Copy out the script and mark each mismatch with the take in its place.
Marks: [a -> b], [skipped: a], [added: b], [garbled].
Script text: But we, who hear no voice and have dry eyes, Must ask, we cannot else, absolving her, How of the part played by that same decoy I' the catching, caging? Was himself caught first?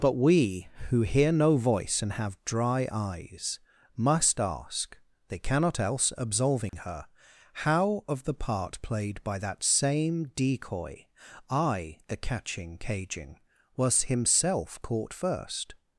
But we, who hear no voice and have dry eyes, Must ask, [we -> they] cannot else, absolving her, How of the part played by that same decoy I' the catching, caging? Was himself caught first?